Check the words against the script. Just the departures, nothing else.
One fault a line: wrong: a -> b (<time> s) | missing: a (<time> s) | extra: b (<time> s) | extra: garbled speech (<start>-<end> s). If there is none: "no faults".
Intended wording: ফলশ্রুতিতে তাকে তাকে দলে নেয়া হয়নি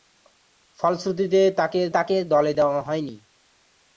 no faults